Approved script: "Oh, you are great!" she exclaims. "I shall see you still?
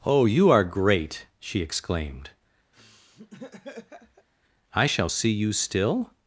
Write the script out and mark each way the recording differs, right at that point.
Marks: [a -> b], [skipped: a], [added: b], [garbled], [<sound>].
"Oh, you are great!" she [exclaims. -> exclaimed] [laugh] "I shall see you still?